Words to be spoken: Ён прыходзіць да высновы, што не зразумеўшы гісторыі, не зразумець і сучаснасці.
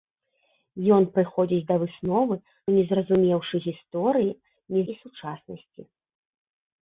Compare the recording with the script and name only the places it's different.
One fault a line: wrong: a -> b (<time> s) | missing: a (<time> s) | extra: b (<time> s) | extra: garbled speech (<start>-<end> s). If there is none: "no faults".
missing: што (2.4 s)
missing: зразумець (4.8 s)